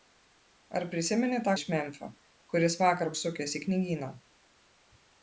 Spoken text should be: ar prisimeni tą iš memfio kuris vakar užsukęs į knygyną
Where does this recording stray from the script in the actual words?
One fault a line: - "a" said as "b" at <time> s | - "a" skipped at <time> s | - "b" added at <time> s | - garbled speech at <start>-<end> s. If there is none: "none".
none